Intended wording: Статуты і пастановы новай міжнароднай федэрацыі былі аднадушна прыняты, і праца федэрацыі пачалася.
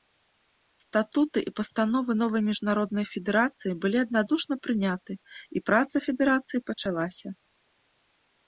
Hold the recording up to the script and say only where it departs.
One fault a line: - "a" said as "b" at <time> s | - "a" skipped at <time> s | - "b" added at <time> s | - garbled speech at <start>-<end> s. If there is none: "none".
none